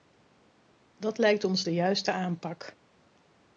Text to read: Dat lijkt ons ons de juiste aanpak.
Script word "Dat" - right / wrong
right